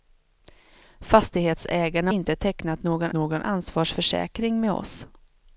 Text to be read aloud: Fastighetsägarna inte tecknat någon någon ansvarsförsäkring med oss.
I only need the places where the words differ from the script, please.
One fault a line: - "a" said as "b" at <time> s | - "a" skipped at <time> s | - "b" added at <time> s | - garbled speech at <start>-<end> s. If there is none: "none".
none